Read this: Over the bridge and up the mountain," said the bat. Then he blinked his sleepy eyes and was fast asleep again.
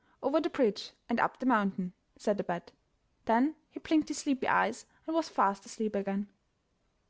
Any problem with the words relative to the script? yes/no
no